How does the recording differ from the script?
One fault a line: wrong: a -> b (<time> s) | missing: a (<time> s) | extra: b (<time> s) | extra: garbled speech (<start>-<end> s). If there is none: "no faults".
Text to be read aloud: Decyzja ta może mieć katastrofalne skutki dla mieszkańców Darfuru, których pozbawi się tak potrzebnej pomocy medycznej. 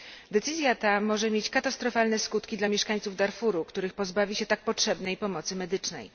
no faults